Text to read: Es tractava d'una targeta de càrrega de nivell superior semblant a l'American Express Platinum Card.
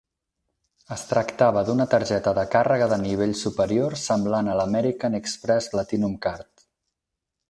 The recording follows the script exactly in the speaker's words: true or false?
true